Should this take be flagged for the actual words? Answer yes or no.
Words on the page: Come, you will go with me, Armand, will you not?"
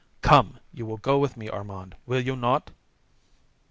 no